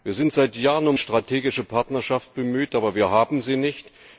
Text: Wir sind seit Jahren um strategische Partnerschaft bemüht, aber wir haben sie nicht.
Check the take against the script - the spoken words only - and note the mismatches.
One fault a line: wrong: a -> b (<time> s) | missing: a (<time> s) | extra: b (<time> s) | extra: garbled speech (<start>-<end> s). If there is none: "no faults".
no faults